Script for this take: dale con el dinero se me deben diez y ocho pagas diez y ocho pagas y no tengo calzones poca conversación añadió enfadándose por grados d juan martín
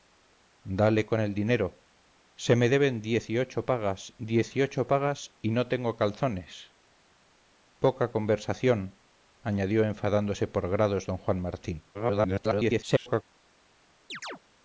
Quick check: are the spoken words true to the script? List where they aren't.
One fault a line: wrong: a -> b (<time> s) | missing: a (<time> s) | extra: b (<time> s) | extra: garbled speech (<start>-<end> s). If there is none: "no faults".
extra: garbled speech (11.9-13.2 s)